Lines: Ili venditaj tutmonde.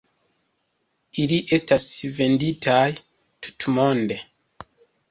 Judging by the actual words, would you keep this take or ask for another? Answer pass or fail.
fail